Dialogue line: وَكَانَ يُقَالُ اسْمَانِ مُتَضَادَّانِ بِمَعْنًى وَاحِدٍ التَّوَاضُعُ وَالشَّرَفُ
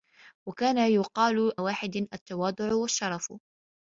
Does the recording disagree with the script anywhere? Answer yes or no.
yes